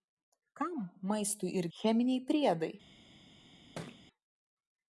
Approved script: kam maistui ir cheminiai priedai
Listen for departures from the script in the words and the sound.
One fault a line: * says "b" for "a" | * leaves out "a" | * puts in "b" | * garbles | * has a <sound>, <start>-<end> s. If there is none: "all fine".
* has a thud, 3.8-4.1 s